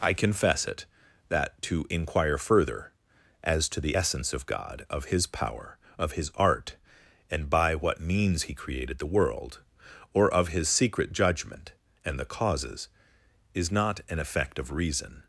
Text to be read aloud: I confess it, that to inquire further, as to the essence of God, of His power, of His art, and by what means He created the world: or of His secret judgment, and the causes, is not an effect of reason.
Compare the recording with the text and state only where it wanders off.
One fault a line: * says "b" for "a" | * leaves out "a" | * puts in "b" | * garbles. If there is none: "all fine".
all fine